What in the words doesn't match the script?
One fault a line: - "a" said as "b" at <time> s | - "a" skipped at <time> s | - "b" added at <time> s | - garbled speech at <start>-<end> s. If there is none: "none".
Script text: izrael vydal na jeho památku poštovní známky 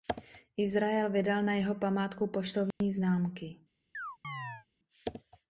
none